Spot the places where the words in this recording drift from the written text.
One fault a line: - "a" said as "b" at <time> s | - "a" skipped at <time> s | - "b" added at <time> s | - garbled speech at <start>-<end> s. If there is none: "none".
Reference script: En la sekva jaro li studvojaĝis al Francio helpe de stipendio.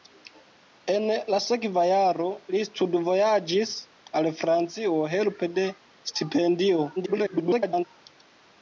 - garbled speech at 7.0-7.9 s